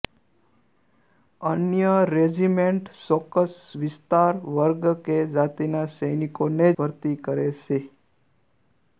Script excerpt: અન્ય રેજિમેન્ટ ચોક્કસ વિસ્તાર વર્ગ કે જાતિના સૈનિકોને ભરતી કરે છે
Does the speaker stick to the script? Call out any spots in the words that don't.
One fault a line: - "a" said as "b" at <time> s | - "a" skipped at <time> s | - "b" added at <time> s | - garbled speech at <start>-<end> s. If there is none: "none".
none